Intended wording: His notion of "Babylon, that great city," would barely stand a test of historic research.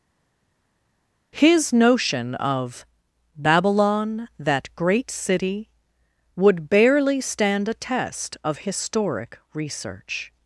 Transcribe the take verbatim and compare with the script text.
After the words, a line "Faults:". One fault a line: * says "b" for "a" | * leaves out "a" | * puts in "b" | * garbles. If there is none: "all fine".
His notion of "Babylon, that great city," would barely stand a test of historic research.
Faults:
all fine